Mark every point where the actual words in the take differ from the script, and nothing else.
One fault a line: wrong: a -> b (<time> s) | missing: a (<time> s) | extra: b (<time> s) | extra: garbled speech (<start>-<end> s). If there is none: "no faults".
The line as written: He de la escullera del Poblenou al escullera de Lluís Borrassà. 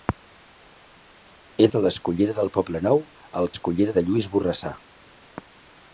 no faults